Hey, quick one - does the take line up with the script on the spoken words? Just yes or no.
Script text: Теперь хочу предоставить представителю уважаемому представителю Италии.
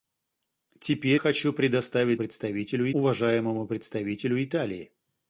yes